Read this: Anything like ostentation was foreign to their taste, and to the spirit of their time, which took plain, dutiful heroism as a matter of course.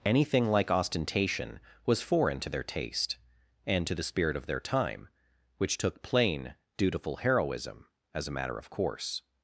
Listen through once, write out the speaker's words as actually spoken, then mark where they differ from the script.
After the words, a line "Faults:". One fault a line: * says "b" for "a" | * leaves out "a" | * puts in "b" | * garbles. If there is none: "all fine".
Anything like ostentation was foreign to their taste, and to the spirit of their time, which took plain, dutiful heroism as a matter of course.
Faults:
all fine